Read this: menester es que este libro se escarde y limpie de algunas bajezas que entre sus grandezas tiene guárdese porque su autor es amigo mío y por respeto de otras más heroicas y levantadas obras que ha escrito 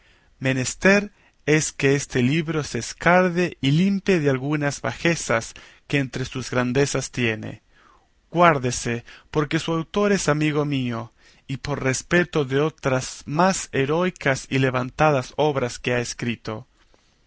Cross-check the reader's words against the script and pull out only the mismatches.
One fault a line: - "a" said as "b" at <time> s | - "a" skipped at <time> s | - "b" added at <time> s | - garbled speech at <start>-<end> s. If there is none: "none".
none